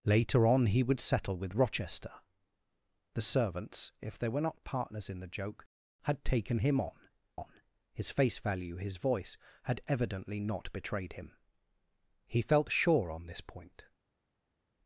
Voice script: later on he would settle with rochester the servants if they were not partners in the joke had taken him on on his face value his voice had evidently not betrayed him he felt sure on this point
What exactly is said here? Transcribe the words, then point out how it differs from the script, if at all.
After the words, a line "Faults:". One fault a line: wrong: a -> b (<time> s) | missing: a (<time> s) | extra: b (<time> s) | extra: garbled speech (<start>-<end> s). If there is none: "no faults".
later on he would settle with rochester the servants if they were not partners in the joke had taken him on on his face value his voice had evidently not betrayed him he felt sure on this point
Faults:
no faults